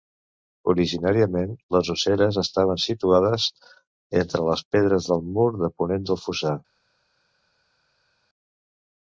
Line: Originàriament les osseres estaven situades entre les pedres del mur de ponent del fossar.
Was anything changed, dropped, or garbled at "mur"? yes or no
no